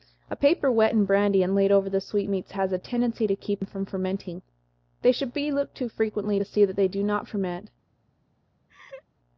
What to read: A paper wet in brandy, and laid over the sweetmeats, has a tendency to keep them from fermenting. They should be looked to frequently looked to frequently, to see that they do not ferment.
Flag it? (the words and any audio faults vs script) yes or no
yes